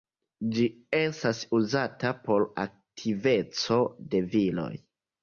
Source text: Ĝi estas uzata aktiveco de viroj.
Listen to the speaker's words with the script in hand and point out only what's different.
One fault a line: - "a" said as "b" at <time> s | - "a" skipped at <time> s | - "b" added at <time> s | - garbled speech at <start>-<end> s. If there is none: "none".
- "por" added at 2.3 s